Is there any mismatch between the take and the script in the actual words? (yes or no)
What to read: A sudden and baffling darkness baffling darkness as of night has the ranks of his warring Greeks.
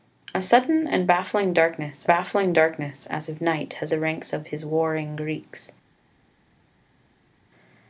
no